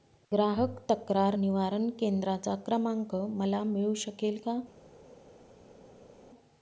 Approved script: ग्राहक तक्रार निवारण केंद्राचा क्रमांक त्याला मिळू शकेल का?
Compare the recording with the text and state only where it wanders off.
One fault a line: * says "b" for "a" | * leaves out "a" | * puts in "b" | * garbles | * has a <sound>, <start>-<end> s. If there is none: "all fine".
* says "मला" for "त्याला"